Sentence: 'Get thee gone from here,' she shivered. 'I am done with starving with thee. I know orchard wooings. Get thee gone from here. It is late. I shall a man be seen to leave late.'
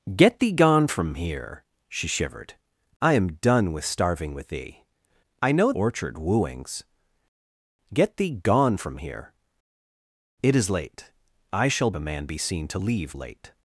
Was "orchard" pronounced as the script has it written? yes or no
yes